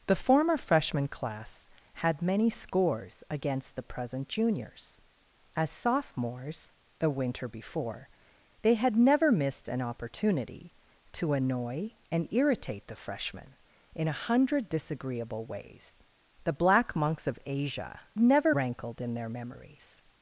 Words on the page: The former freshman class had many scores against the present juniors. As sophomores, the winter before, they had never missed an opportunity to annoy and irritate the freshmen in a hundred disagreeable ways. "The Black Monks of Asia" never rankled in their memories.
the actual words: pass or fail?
pass